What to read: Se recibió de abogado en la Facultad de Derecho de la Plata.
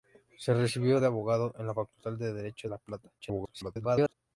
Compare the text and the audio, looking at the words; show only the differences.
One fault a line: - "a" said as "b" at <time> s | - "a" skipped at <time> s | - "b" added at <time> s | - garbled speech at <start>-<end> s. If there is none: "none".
- "de" skipped at 2.7 s
- garbled speech at 3.2-4.1 s